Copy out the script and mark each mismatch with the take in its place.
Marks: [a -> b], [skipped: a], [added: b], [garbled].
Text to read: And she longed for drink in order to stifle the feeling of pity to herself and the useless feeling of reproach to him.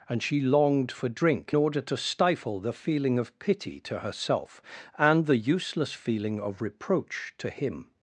And she longed for drink [skipped: in] order to stifle the feeling of pity to herself and the useless feeling of reproach to him.